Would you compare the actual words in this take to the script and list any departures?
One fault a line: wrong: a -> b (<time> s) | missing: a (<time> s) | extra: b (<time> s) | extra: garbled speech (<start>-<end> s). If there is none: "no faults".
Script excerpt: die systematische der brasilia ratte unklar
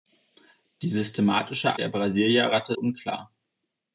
no faults